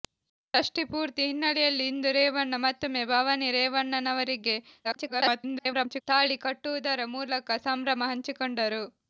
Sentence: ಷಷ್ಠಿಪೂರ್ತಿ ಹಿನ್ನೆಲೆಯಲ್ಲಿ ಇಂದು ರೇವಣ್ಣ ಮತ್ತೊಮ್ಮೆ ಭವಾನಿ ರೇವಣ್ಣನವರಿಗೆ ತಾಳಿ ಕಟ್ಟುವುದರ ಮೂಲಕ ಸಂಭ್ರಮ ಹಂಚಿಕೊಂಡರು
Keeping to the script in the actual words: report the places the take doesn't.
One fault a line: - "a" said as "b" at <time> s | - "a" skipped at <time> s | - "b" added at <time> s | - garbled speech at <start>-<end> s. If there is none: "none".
- garbled speech at 4.8-6.0 s